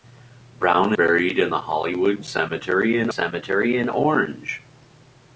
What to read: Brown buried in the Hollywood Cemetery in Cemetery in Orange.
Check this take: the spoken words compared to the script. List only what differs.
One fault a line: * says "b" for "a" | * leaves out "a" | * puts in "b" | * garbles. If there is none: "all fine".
all fine